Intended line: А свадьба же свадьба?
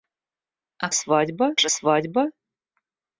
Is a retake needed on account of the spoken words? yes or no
no